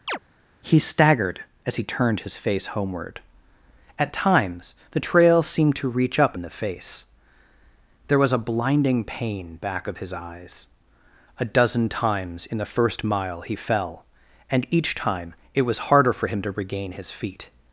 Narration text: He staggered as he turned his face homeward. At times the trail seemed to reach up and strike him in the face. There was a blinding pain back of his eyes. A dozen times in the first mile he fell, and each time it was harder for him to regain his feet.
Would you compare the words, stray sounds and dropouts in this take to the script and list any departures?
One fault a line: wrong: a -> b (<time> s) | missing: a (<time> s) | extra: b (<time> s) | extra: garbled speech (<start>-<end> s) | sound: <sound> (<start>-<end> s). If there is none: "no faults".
sound: chirp (0.1-0.2 s)
missing: and strike him (6.4 s)